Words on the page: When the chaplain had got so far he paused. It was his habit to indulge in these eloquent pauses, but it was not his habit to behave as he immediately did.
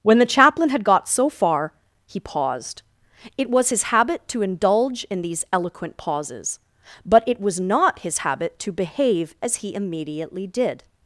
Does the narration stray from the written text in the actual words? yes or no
no